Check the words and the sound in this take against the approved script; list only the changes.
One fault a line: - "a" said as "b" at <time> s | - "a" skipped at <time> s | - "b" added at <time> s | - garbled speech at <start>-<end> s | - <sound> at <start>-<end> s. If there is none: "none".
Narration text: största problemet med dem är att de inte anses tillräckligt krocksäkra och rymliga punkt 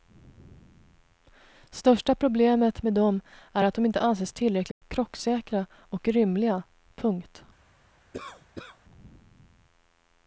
- dropout at 4.7-4.8 s
- cough at 8.1-8.8 s